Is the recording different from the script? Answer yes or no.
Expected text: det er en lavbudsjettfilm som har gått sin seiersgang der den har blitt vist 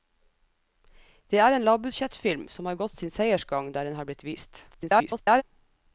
yes